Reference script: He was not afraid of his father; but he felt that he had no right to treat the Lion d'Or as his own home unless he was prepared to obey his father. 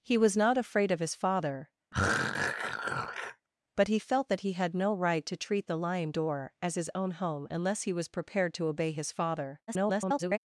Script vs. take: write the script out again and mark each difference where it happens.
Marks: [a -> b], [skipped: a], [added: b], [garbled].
He was not afraid of his father; but he felt that he had no right to treat the Lion d'Or as his own home unless he was prepared to obey his father. [garbled]